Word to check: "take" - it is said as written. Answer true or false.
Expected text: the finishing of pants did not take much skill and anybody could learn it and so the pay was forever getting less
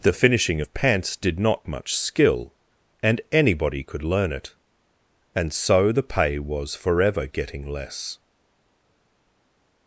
false